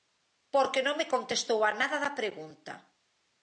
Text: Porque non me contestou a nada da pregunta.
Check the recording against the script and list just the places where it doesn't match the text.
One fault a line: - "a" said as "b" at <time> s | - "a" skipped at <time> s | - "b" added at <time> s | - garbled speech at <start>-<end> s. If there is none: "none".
none